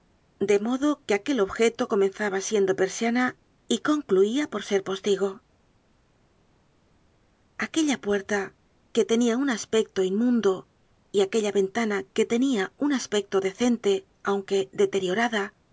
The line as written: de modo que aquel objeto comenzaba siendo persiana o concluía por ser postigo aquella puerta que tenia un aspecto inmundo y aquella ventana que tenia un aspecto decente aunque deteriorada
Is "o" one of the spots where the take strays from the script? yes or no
yes